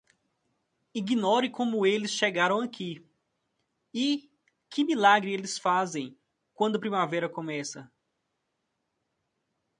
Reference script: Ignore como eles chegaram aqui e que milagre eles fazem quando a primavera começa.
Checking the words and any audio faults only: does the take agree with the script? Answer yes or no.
yes